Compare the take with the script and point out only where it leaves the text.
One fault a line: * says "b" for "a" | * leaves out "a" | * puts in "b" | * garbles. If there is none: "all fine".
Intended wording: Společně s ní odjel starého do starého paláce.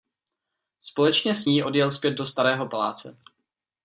* says "zpět" for "starého"